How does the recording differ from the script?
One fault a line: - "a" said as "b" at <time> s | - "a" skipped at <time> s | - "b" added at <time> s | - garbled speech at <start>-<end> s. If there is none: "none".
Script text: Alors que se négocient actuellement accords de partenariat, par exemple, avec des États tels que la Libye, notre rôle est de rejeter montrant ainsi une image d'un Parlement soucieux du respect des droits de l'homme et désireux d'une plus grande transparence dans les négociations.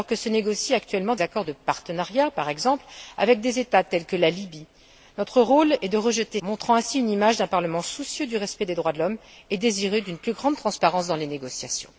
none